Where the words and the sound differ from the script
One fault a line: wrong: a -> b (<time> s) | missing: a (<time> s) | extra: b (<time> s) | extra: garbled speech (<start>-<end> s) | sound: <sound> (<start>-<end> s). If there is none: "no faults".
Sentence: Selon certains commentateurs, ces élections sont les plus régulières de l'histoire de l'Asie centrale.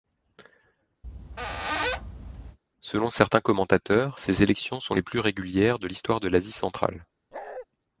sound: squeak (1.0-2.6 s)
sound: bark (7.3-7.7 s)